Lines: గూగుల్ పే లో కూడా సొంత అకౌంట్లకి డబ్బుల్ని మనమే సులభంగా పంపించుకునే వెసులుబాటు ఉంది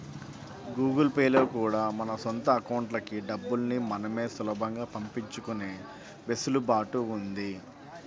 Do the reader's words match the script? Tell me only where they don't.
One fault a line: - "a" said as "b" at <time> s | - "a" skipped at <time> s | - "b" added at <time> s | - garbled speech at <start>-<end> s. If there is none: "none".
- "మన" added at 2.0 s